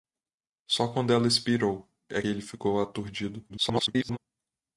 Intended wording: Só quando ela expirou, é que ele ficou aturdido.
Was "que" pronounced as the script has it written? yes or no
no